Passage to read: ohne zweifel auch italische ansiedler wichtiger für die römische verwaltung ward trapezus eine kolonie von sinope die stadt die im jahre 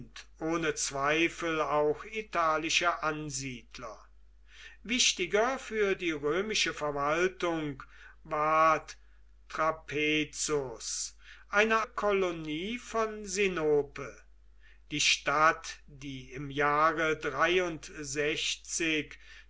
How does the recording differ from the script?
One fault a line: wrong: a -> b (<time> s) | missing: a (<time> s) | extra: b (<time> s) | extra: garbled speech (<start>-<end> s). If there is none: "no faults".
no faults